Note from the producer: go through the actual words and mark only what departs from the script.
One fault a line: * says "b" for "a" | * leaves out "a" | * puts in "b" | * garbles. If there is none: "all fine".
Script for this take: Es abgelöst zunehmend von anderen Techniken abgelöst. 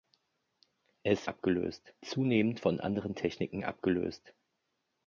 all fine